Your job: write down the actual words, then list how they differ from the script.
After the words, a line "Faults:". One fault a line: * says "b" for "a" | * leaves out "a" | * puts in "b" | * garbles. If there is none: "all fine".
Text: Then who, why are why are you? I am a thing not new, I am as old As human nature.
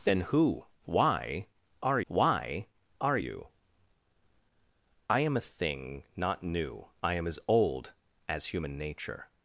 Then who, why are why are you? I am a thing not new, I am as old As human nature.
Faults:
all fine